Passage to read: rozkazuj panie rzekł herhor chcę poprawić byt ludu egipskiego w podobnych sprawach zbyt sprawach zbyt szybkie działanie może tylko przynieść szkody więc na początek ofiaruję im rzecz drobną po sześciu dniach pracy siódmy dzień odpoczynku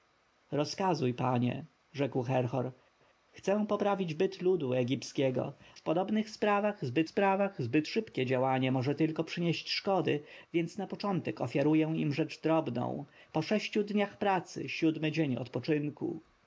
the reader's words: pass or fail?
pass